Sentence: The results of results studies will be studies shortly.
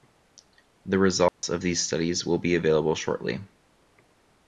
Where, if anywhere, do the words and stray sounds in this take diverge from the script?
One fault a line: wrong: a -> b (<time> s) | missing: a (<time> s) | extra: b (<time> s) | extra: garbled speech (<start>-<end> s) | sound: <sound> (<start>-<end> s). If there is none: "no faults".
sound: dropout (1.3-1.4 s)
wrong: results -> these (1.6 s)
wrong: studies -> available (2.5 s)